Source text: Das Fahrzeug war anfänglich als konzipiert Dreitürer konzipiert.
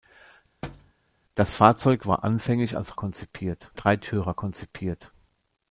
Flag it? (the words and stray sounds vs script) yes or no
yes